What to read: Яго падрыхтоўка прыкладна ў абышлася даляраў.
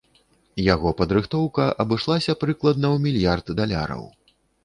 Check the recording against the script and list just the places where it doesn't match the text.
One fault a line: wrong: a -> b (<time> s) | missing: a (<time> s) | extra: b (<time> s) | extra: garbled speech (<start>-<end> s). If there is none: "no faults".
extra: абышлася (1.8 s)
wrong: абышлася -> мільярд (3.0 s)